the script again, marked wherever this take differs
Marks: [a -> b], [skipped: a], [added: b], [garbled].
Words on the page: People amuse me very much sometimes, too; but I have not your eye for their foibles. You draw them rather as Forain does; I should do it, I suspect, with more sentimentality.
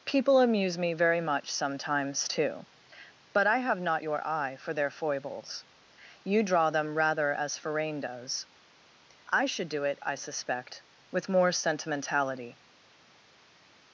People amuse me very much sometimes, too; but I have not your eye for their foibles. You draw them rather as Forain does; I should do it, I suspect, with more sentimentality.